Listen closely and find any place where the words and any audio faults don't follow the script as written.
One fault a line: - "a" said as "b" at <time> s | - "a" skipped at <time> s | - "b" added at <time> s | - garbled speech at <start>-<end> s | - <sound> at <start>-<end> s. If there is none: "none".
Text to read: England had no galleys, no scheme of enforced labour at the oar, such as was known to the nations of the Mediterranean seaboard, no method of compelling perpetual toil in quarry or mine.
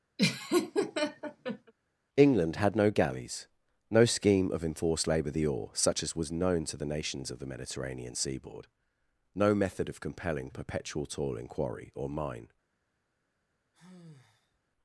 - laugh at 0.2-1.7 s
- "at" skipped at 5.3 s
- sigh at 13.7-14.6 s